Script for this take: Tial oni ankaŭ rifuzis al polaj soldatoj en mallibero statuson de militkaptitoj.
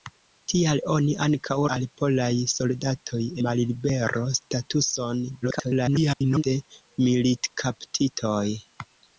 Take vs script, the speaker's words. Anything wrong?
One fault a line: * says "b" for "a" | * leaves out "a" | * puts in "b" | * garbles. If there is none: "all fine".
* leaves out "rifuzis"
* leaves out "en"
* garbles